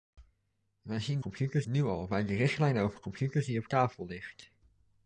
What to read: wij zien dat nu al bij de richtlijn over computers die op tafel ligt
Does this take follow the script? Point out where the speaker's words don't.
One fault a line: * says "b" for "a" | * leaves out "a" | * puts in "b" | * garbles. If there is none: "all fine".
* says "computers" for "dat"